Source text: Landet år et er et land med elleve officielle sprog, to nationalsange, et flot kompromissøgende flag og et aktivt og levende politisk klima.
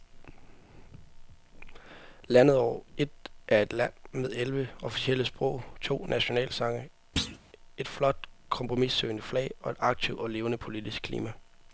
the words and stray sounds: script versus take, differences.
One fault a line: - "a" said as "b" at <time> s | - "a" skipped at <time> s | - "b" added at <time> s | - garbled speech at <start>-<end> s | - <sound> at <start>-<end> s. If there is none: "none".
- thud at 7.2-7.4 s